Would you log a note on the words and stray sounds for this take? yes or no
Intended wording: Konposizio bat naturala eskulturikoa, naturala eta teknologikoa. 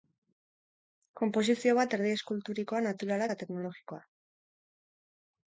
yes